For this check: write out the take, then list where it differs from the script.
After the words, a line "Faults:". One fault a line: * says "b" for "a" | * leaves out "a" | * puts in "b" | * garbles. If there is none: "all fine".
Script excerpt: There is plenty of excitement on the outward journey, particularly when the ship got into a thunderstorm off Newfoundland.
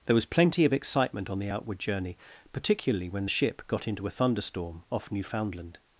There was plenty of excitement on the outward journey, particularly when the ship got into a thunderstorm off Newfoundland.
Faults:
* says "was" for "is"